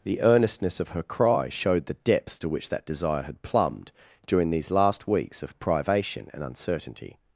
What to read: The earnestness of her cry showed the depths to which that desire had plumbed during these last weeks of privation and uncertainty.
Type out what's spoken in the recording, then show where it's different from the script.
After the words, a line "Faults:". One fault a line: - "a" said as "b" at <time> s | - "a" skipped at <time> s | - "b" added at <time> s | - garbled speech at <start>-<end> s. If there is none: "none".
The earnestness of her cry showed the depths to which that desire had plumbed during these last weeks of privation and uncertainty.
Faults:
none